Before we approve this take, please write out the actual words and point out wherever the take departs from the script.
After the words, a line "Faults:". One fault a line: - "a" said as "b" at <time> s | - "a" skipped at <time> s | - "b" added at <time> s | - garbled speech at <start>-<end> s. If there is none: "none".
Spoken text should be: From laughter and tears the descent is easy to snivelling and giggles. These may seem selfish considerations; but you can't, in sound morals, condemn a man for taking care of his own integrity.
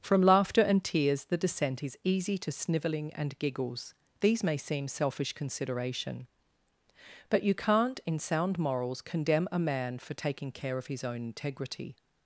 From laughter and tears the descent is easy to snivelling and giggles. These may seem selfish consideration; but you can't, in sound morals, condemn a man for taking care of his own integrity.
Faults:
- "considerations" said as "consideration" at 5.3 s